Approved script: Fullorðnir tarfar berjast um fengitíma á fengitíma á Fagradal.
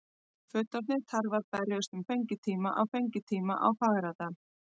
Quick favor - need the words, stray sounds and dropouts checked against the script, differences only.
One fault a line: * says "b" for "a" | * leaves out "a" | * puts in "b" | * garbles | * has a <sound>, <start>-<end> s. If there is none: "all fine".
all fine